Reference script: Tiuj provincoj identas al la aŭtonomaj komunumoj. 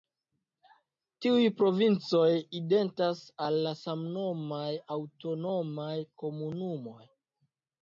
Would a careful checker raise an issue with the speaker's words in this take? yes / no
yes